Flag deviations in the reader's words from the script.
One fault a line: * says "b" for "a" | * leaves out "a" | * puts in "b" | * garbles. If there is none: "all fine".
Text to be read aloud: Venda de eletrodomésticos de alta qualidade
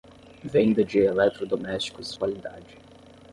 * leaves out "de alta"